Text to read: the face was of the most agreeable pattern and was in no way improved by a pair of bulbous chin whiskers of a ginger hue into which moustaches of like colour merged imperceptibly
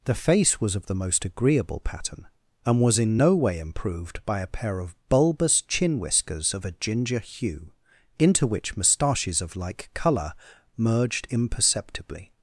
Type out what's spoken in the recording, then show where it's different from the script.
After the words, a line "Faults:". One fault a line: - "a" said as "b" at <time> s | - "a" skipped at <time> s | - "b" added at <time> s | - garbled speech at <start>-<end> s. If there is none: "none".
the face was of the most agreeable pattern and was in no way improved by a pair of bulbous chin whiskers of a ginger hue into which moustaches of like colour merged imperceptibly
Faults:
none